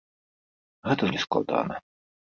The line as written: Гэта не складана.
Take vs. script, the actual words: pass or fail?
pass